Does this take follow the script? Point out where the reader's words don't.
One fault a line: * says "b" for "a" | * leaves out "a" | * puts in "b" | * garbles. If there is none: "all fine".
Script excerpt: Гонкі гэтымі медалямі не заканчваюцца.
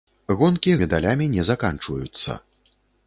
* leaves out "гэтымі"